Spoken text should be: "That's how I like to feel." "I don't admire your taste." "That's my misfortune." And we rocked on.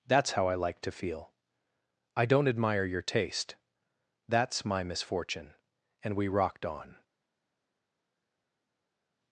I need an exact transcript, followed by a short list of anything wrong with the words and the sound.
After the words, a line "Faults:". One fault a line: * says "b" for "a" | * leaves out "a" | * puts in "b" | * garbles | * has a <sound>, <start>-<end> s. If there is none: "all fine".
"That's how I like to feel." "I don't admire your taste." "That's my misfortune." And we rocked on.
Faults:
all fine